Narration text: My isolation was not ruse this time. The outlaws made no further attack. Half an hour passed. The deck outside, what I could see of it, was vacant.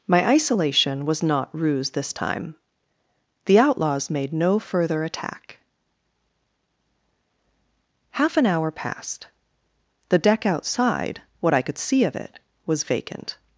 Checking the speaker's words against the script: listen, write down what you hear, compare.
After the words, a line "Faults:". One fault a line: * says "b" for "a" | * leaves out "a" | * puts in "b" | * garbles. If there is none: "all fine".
My isolation was not ruse this time. The outlaws made no further attack. Half an hour passed. The deck outside, what I could see of it, was vacant.
Faults:
all fine